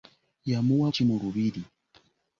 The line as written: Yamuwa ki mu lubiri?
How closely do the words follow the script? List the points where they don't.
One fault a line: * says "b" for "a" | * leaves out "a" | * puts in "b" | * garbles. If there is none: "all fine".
all fine